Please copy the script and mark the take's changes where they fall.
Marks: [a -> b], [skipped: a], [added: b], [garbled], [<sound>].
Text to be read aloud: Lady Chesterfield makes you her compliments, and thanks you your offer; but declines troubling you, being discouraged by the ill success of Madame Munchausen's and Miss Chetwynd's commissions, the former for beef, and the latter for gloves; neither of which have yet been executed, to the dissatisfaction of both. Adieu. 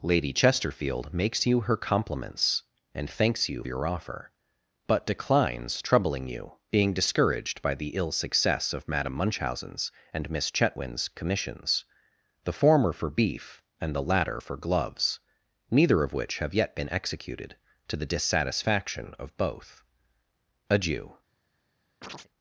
Lady Chesterfield makes you her compliments, and thanks you your offer; but declines troubling you, being discouraged by the ill success of Madame Munchausen's and Miss Chetwynd's commissions, the former for beef, and the latter for gloves; neither of which have yet been executed, to the dissatisfaction of both. Adieu. [chirp]